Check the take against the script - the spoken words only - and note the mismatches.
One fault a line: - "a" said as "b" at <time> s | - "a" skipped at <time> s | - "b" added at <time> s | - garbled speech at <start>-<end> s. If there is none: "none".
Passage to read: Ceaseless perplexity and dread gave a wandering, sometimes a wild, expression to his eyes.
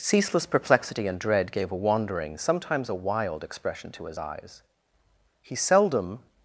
- "He seldom" added at 5.4 s